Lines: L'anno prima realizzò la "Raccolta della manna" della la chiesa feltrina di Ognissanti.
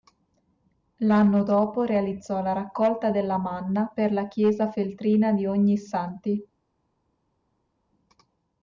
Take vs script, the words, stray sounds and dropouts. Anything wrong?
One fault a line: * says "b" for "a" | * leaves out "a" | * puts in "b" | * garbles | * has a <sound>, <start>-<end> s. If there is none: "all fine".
* says "dopo" for "prima"
* says "per" for "della"